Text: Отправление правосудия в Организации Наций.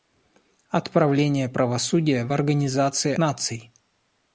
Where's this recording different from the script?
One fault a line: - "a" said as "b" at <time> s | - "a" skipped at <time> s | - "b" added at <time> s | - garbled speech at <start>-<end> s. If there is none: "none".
none